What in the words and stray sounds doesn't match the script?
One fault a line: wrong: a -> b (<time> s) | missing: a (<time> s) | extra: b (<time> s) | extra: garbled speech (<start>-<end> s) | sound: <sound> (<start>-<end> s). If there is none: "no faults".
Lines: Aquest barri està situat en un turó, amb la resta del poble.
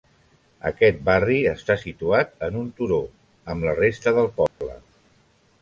sound: dropout (4.5-4.6 s)